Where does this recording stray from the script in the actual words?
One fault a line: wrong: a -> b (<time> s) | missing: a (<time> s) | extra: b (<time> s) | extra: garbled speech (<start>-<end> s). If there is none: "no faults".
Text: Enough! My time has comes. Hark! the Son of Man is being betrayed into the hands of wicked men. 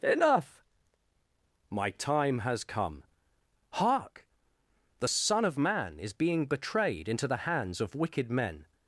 wrong: comes -> come (2.6 s)